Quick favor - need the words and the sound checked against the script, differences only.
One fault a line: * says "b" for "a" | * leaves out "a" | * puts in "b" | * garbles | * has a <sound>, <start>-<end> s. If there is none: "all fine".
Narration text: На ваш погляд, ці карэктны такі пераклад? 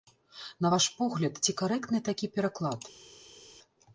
all fine